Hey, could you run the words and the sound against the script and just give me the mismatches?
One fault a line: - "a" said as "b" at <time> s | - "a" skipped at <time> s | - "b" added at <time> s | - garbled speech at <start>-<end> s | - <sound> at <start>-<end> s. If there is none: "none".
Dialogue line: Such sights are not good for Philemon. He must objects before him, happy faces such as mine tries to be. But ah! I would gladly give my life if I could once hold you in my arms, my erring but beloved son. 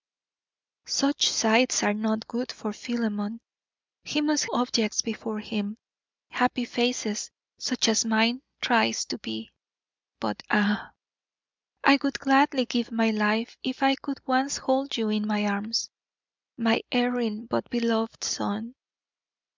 none